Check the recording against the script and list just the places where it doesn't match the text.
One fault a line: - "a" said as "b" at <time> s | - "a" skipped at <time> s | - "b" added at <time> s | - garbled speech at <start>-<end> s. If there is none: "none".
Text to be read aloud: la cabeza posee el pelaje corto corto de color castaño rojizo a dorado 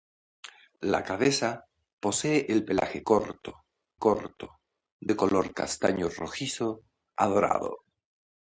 none